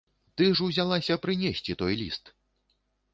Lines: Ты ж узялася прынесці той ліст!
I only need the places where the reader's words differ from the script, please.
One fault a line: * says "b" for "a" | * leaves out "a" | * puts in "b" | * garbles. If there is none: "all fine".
all fine